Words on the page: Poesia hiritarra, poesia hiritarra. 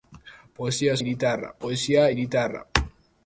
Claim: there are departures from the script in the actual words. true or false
false